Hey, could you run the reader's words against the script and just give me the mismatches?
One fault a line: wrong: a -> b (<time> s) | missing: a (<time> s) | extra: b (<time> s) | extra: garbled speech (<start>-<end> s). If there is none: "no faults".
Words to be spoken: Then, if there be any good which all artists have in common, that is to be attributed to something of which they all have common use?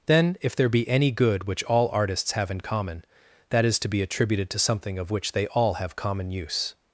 no faults